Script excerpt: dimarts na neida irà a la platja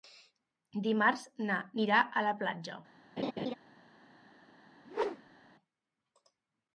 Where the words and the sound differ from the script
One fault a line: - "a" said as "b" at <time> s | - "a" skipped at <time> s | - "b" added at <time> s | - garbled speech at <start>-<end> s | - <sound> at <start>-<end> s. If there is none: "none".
- "neida" skipped at 1.6 s
- laugh at 3.2-3.5 s
- whoosh at 4.8-5.5 s